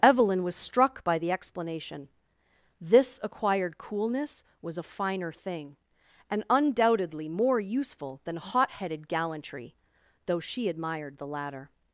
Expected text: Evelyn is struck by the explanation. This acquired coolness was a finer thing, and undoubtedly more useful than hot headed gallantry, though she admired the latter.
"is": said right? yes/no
no